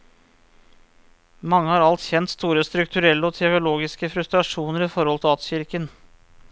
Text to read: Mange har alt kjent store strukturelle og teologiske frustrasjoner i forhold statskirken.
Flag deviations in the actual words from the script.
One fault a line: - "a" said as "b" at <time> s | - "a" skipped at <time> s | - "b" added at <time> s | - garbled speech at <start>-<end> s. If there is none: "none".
none